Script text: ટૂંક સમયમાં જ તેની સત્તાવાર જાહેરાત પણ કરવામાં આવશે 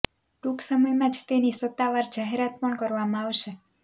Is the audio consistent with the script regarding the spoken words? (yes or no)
yes